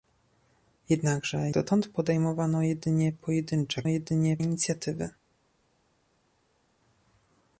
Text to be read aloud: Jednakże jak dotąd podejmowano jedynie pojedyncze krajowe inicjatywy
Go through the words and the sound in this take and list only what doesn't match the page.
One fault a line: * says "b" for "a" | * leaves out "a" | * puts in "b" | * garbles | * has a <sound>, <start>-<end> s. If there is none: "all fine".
* leaves out "jak"
* says "jedynie" for "krajowe"